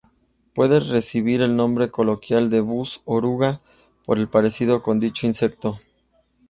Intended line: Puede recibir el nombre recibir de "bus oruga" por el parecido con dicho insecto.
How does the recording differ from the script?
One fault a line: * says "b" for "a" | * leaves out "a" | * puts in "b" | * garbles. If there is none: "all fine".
* says "coloquial" for "recibir"